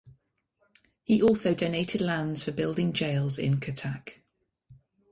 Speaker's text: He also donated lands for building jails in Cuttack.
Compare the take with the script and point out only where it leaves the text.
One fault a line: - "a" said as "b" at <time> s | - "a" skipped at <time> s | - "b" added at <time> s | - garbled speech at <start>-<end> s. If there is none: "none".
none